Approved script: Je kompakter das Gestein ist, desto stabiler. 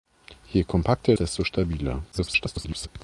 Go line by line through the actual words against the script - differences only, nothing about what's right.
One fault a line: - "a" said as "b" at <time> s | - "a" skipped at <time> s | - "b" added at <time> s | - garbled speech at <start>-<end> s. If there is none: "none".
- "das Gestein ist" skipped at 1.1 s
- garbled speech at 2.1-2.9 s